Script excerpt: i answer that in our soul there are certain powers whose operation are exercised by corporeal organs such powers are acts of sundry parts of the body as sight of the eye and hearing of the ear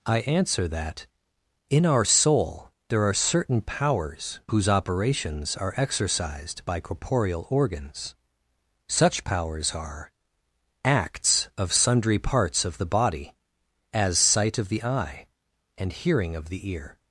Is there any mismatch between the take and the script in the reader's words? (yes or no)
yes